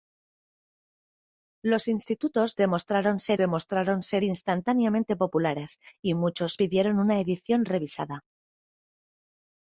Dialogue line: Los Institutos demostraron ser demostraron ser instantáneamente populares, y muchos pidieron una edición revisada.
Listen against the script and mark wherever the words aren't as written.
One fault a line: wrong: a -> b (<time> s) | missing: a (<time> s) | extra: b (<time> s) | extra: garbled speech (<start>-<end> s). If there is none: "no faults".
no faults